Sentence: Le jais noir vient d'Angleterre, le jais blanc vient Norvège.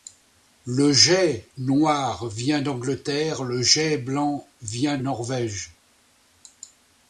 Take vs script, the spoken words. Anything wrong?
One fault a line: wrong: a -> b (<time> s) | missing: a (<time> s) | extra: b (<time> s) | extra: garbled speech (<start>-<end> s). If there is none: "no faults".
no faults